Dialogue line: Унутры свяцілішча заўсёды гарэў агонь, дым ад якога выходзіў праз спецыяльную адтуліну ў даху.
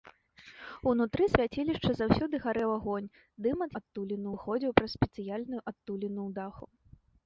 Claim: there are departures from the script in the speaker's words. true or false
true